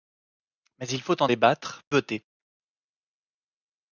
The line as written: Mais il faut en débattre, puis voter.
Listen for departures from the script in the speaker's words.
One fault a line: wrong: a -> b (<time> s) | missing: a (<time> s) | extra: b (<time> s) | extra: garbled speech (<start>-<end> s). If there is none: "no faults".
missing: puis (1.8 s)